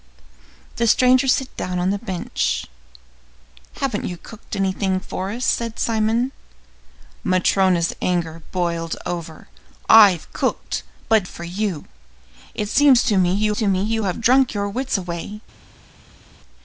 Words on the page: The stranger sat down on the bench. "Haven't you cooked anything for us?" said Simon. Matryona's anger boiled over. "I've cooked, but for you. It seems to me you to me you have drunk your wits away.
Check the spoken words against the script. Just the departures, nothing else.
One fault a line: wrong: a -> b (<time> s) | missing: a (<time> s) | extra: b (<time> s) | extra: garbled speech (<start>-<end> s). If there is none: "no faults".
no faults